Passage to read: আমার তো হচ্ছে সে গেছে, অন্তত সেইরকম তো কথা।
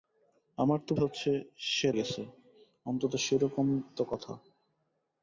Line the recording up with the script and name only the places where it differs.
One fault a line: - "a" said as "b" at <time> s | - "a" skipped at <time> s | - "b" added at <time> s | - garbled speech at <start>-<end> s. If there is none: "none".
none